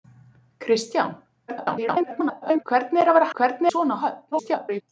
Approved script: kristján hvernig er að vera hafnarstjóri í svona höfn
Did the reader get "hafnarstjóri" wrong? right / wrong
wrong